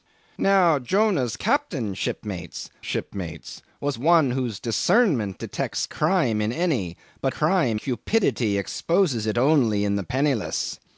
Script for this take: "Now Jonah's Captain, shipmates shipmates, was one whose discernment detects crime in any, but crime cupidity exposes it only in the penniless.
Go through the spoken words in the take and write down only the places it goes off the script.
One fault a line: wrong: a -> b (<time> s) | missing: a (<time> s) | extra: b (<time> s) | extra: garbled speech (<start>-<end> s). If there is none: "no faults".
no faults